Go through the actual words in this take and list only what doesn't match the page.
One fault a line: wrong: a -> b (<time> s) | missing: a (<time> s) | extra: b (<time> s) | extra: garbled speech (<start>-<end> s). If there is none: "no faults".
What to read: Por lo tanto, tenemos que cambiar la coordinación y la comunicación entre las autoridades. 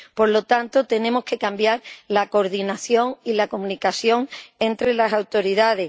no faults